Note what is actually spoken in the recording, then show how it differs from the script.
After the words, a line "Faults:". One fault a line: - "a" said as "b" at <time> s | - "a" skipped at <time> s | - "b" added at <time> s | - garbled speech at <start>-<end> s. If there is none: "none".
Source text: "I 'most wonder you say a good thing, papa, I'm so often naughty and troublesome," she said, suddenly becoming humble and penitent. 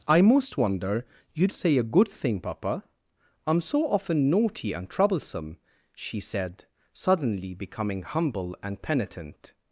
"I 'most wonder you say a good thing, papa, I'm so often naughty and troublesome," she said, suddenly becoming humble and penitent.
Faults:
none